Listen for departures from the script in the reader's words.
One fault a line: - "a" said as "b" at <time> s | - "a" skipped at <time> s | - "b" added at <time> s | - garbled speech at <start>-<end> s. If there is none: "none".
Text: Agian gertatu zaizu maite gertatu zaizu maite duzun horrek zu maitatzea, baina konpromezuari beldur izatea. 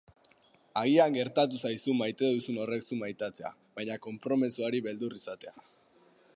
- "gertatu zaizu maite" skipped at 2.3 s